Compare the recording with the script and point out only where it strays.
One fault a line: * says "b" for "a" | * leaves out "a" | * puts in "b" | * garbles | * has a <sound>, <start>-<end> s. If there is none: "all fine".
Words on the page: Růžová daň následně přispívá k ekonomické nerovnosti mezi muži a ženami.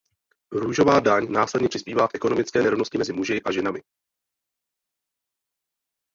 all fine